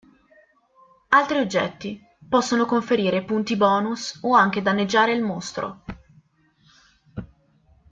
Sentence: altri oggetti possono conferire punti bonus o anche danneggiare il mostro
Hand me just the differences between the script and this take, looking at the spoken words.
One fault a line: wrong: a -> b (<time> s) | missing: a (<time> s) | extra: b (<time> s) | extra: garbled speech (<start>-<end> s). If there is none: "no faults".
no faults